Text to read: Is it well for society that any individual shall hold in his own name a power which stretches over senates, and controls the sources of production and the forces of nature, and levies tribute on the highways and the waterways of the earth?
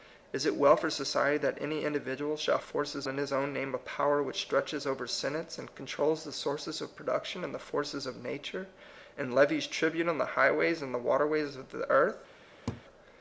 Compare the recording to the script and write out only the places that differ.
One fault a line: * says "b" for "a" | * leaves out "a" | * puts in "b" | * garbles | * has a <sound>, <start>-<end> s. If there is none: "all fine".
* says "forces" for "hold"
* has a laugh, 12.7-12.8 s